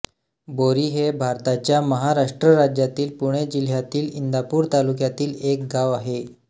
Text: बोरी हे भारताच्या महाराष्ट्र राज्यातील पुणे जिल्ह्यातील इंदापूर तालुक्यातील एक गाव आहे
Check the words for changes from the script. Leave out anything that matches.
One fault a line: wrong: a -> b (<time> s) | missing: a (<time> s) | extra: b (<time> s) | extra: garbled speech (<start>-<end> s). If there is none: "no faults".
no faults